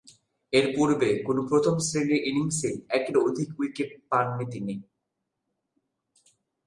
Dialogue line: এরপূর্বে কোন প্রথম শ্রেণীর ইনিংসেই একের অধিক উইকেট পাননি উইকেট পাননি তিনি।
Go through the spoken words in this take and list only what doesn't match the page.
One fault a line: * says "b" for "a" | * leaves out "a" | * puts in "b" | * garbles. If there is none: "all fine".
* leaves out "উইকেট পাননি"